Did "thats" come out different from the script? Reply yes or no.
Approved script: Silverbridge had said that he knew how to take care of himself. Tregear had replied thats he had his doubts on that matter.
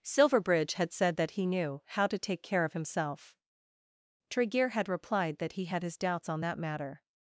yes